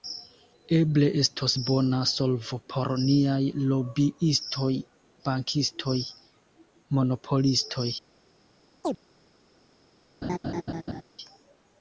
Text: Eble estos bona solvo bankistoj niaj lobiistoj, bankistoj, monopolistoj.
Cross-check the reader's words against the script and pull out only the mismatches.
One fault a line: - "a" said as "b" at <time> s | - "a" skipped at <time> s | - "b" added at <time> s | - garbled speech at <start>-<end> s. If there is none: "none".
- "bankistoj" said as "por" at 2.7 s